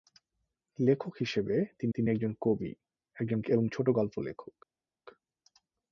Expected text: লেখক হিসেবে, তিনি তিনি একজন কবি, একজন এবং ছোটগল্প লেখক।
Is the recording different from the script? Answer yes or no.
no